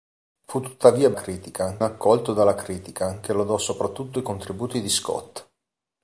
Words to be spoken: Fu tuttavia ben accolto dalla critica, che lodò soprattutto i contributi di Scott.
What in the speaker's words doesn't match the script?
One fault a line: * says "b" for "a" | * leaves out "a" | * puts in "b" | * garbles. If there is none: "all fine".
* says "critica" for "ben"